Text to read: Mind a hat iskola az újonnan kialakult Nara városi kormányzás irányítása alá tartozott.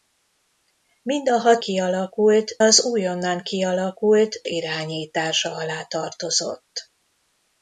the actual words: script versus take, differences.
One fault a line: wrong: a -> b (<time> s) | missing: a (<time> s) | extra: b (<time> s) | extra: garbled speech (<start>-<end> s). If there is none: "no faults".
wrong: iskola -> kialakult (1.6 s)
missing: Nara városi kormányzás (4.4 s)